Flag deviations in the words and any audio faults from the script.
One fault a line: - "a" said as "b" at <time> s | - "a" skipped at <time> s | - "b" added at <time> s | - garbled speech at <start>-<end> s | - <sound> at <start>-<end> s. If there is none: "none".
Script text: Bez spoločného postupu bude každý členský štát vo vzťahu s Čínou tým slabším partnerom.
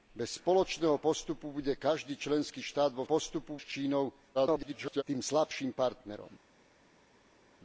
- "vzťahu" said as "postupu" at 3.0 s
- garbled speech at 4.3-5.0 s